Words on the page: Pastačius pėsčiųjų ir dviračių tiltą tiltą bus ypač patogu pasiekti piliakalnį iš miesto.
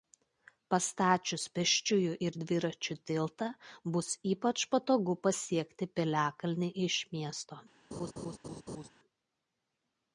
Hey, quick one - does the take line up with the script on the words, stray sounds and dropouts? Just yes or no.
no